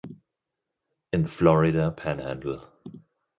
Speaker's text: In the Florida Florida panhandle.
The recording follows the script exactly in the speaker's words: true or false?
false